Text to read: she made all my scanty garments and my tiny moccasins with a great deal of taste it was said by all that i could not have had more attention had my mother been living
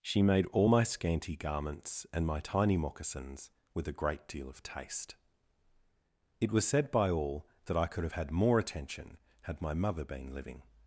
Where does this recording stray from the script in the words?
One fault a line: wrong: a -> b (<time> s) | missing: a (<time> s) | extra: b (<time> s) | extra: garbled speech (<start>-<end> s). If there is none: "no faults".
missing: not (8.0 s)